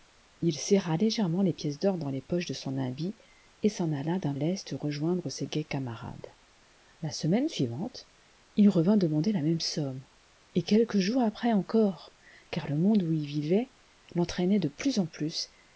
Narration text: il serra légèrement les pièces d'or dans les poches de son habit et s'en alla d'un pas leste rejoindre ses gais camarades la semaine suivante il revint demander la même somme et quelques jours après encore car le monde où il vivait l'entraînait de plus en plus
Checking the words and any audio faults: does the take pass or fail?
fail